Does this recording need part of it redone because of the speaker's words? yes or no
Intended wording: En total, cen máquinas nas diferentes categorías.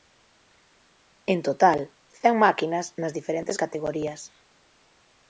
no